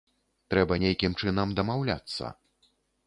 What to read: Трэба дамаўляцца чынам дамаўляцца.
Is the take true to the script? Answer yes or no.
no